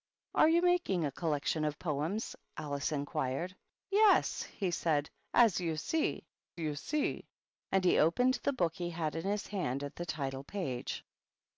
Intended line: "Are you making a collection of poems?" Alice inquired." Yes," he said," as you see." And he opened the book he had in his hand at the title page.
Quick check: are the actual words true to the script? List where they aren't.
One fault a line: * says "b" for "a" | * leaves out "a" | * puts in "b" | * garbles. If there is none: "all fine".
* puts in "you see"